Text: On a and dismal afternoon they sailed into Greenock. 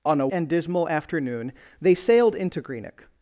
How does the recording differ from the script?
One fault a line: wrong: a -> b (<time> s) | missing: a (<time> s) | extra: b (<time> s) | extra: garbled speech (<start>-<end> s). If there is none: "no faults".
no faults